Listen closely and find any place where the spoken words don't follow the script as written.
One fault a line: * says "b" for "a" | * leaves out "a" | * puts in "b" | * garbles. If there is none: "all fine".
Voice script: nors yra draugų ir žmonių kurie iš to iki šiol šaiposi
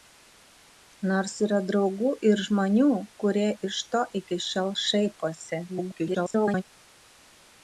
* garbles